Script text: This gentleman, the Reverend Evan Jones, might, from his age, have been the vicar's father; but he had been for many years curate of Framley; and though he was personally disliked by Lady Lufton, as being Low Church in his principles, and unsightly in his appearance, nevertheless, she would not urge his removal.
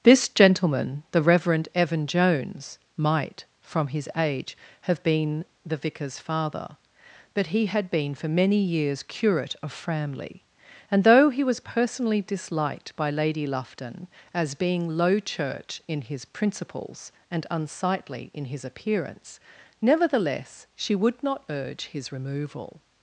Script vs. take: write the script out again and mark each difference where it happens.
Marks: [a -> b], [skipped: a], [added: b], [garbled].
This gentleman, the Reverend Evan Jones, might, from his age, have been the vicar's father; but he had been for many years curate of Framley; and though he was personally disliked by Lady Lufton, as being Low Church in his principles, and unsightly in his appearance, nevertheless, she would not urge his removal.